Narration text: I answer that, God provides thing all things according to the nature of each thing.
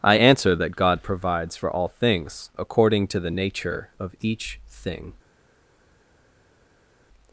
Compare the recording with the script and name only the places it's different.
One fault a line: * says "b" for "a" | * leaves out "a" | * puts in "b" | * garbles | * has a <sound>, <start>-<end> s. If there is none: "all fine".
* says "for" for "thing"